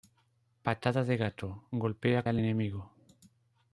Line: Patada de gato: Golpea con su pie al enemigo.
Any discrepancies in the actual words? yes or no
yes